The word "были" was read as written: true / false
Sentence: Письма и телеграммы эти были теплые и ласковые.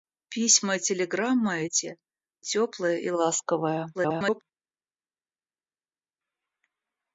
false